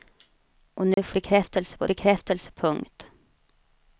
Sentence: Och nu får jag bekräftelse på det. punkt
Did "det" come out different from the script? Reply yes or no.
yes